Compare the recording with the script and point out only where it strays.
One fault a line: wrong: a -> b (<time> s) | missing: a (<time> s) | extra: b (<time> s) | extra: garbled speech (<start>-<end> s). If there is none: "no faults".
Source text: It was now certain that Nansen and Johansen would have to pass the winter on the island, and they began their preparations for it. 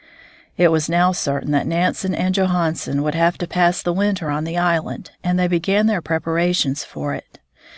no faults